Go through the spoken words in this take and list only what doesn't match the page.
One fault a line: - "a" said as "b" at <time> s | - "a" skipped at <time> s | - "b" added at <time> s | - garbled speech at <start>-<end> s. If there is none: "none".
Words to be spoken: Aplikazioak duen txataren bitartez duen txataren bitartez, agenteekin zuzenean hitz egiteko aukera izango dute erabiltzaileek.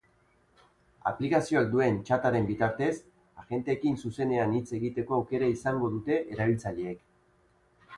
- "duen txataren bitartez" skipped at 2.9 s